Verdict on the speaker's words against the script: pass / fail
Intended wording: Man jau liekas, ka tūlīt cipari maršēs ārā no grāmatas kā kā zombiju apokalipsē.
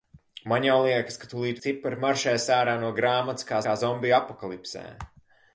pass